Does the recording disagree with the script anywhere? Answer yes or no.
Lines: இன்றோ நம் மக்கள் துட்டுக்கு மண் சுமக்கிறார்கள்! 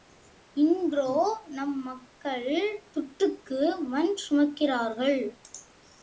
no